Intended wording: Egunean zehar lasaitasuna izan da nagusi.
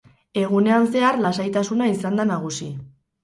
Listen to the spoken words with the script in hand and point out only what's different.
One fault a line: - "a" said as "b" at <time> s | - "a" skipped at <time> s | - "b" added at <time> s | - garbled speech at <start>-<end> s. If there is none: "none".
none